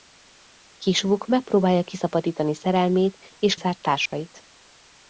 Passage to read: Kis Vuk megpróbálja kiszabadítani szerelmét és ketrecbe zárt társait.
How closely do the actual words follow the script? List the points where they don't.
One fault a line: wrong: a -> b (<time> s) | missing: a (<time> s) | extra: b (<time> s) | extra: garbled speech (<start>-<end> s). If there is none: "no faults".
missing: ketrecbe (3.5 s)